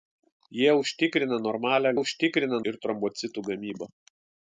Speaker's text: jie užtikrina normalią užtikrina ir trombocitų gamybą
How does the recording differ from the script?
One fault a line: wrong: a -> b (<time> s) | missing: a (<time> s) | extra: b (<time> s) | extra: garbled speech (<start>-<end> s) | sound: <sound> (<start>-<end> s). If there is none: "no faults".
no faults